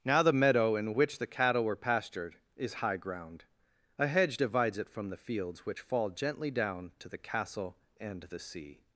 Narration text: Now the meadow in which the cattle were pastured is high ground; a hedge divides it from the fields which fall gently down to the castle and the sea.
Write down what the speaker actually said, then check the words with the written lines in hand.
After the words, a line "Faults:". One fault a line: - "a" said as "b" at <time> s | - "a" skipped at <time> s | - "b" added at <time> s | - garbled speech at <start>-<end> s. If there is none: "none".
Now the meadow in which the cattle were pastured is high ground; a hedge divides it from the fields which fall gently down to the castle and the sea.
Faults:
none